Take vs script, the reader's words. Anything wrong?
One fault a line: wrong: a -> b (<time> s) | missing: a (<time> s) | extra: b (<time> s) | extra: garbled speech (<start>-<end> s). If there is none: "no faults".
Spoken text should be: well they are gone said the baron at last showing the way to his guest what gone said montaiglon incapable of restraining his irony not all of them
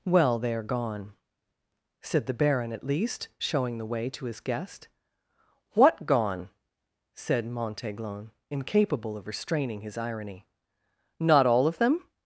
wrong: last -> least (2.8 s)